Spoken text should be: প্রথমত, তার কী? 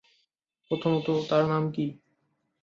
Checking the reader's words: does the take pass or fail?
fail